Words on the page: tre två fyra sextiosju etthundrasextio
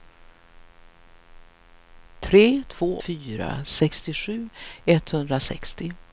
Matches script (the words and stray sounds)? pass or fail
pass